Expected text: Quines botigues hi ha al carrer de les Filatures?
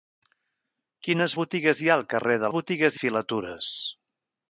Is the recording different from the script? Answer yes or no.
yes